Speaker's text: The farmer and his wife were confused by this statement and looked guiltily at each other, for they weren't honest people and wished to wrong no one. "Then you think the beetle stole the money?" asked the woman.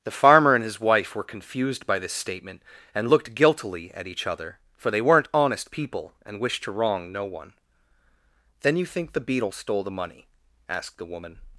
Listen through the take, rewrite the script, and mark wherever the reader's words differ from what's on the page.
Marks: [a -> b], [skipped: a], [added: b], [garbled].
The farmer and his wife were confused by this statement and looked guiltily at each other, for they weren't honest people and wished to wrong no one. "Then you think the beetle stole the money?" asked the woman.